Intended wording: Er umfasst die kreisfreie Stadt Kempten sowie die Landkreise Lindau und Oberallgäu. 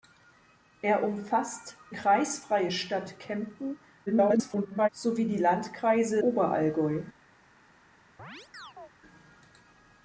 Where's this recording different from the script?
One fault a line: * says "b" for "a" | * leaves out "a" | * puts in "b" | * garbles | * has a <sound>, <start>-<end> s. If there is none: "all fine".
* leaves out "die"
* garbles
* leaves out "Lindau und"
* has a chirp, 8.2-8.9 s